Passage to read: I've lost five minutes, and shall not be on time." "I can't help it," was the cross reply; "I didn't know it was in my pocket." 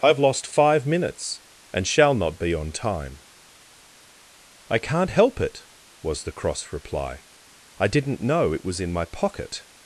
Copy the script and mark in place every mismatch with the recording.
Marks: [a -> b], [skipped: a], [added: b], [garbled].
I've lost five minutes, and shall not be on time." "I can't help it," was the cross reply; "I didn't know it was in my pocket."